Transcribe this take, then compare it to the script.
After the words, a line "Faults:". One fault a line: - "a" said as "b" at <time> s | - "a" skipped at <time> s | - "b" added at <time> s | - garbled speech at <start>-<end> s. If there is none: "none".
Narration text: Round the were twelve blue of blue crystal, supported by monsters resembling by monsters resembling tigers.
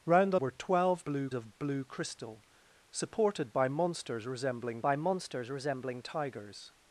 Round the were twelve blue of blue crystal, supported by monsters resembling by monsters resembling tigers.
Faults:
none